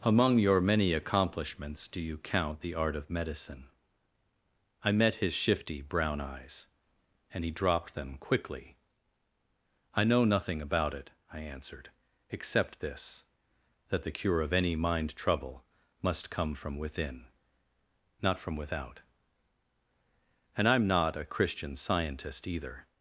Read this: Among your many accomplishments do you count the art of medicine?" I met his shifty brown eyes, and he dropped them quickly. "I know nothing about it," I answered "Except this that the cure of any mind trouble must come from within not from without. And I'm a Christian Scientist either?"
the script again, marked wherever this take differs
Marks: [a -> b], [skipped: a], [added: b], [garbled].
Among your many accomplishments do you count the art of medicine?" I met his shifty brown eyes, and he dropped them quickly. "I know nothing about it," I answered "Except this that the cure of any mind trouble must come from within not from without. And I'm [added: not] a Christian Scientist either?"